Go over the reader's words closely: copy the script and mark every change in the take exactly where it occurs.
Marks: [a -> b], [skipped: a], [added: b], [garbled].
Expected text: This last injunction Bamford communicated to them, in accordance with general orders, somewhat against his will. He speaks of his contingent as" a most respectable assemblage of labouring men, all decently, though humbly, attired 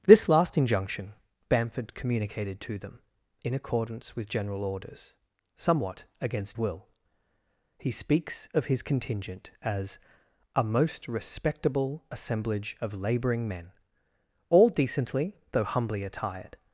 This last injunction Bamford communicated to them, in accordance with general orders, somewhat against [skipped: his] will. He speaks of his contingent as" a most respectable assemblage of labouring men, all decently, though humbly, attired